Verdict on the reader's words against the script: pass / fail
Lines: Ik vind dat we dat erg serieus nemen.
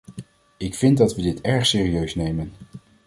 fail